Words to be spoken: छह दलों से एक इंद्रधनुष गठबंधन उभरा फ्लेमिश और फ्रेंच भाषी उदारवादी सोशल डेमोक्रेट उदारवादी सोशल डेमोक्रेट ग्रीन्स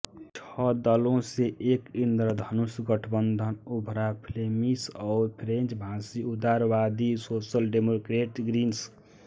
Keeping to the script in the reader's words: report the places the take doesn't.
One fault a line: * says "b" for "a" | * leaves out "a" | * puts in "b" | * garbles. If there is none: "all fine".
* leaves out "उदारवादी सोशल डेमोक्रेट"